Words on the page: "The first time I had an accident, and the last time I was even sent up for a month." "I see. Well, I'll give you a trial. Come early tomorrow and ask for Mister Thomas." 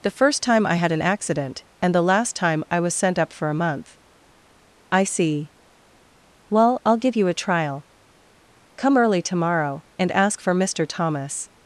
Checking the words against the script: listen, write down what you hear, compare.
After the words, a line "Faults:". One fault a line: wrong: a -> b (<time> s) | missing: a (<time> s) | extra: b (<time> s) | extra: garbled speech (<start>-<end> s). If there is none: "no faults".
"The first time I had an accident, and the last time I was sent up for a month." "I see. Well, I'll give you a trial. Come early tomorrow and ask for Mister Thomas."
Faults:
missing: even (3.0 s)